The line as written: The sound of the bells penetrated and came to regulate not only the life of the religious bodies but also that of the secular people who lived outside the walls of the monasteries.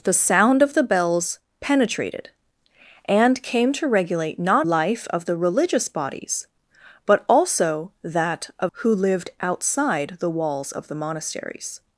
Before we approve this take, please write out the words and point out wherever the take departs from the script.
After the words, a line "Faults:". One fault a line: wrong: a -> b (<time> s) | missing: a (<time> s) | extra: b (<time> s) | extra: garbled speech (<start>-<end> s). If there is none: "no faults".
The sound of the bells penetrated and came to regulate not life of the religious bodies but also that of who lived outside the walls of the monasteries.
Faults:
missing: only the (4.7 s)
missing: the secular people (8.7 s)